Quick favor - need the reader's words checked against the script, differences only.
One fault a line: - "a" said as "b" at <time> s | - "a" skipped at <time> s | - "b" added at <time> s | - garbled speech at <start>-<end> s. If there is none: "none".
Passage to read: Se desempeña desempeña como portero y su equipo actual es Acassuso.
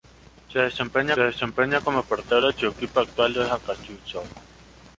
none